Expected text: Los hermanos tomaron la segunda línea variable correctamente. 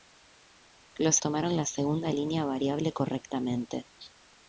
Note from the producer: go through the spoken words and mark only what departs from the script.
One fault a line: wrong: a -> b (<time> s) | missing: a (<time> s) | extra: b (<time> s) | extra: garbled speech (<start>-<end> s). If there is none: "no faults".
missing: hermanos (1.2 s)